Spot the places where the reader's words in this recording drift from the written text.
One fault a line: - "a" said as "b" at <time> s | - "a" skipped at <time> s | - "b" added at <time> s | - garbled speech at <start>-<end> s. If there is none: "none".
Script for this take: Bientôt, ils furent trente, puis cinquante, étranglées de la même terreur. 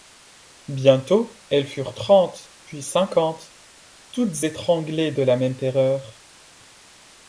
- "ils" said as "elles" at 1.5 s
- "toutes" added at 4.1 s